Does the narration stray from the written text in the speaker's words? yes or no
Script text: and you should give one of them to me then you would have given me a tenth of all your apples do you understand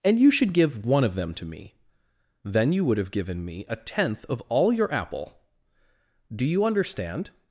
yes